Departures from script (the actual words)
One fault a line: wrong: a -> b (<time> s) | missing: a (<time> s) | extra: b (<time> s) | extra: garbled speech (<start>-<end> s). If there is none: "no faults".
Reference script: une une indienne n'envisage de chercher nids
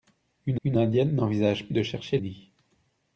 no faults